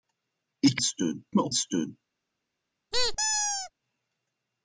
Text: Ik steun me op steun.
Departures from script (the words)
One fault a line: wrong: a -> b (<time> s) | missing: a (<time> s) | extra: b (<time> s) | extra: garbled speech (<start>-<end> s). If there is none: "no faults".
no faults